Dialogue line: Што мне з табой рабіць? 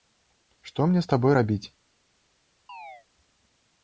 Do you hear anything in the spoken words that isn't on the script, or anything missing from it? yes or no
no